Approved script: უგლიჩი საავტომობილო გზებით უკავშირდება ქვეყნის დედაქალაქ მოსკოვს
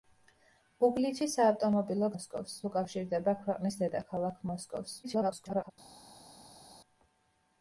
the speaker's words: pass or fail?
fail